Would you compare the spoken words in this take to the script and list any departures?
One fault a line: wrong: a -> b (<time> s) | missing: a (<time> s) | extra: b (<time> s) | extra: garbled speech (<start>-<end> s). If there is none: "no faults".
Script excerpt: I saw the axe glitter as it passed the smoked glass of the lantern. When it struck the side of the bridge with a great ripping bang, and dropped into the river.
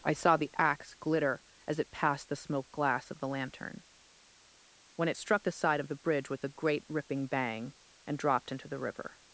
no faults